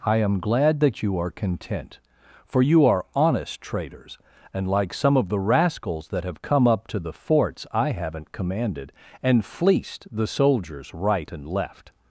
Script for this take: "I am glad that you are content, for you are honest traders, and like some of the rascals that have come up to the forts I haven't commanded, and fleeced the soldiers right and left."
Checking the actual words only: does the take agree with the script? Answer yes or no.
yes